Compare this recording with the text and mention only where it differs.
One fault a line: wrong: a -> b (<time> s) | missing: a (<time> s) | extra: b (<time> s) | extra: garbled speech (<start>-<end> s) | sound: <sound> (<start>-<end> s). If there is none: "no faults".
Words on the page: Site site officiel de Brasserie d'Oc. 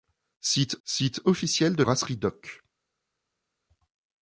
no faults